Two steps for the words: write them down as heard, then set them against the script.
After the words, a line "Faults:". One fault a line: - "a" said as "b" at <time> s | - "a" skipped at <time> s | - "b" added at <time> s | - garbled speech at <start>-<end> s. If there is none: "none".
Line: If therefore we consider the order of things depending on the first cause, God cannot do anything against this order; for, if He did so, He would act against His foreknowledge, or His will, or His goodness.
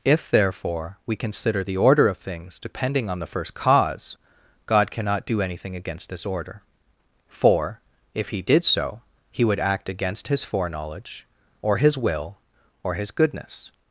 If therefore we consider the order of things depending on the first cause, God cannot do anything against this order; for, if He did so, He would act against His foreknowledge, or His will, or His goodness.
Faults:
none